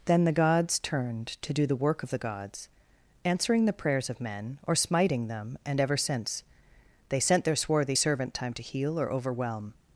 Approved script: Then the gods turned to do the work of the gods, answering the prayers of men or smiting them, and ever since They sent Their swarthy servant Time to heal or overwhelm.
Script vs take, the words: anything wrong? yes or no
no